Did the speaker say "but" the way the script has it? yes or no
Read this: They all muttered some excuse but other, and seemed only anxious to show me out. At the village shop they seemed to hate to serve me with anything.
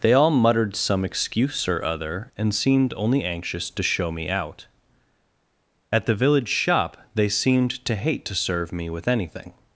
no